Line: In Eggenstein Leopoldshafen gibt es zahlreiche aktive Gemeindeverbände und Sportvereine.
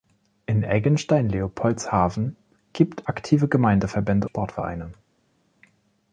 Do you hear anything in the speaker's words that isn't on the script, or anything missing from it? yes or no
yes